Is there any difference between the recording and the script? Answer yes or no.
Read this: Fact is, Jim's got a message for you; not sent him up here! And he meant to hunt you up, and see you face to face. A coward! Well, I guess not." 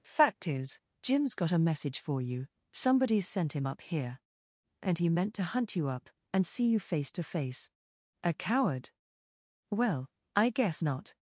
yes